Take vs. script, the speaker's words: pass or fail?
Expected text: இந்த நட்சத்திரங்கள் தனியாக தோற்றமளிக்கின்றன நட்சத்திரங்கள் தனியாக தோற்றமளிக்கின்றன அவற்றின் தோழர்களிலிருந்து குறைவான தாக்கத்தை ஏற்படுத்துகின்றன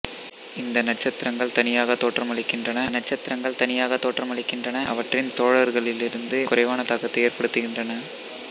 pass